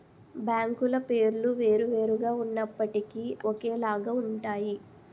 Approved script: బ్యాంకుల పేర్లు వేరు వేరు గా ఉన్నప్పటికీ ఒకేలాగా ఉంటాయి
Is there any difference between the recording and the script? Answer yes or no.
no